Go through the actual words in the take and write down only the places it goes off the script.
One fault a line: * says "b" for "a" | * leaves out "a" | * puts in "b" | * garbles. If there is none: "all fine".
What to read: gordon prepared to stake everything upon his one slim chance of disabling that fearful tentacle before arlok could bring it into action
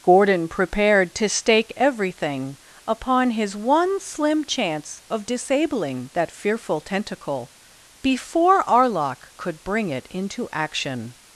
all fine